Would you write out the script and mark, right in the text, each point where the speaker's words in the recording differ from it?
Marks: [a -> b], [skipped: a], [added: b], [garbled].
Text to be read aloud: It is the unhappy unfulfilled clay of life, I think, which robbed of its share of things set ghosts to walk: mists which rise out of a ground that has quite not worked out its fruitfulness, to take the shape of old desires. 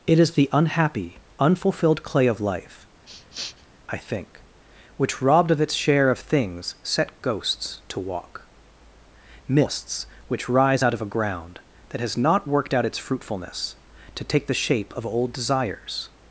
It is the unhappy unfulfilled clay of life, I think, which robbed of its share of things set ghosts to walk: mists which rise out of a ground that has [skipped: quite] not worked out its fruitfulness, to take the shape of old desires.